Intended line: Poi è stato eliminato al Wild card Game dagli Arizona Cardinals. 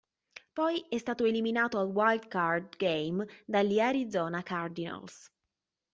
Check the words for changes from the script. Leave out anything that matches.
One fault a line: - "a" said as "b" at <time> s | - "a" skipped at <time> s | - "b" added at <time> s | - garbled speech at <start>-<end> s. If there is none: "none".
none